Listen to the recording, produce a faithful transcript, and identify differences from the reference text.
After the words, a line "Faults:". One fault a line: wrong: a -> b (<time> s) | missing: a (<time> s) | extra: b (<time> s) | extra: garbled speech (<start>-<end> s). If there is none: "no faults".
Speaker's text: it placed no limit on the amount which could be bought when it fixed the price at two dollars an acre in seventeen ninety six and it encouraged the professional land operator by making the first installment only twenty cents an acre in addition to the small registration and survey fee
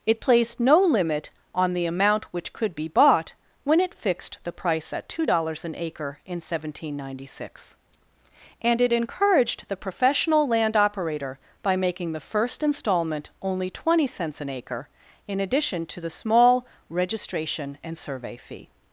it placed no limit on the amount which could be bought when it fixed the price at two dollars an acre in seventeen ninety six and it encouraged the professional land operator by making the first installment only twenty cents an acre in addition to the small registration and survey fee
Faults:
no faults